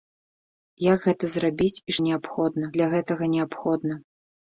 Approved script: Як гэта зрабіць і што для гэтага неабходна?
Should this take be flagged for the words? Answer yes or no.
yes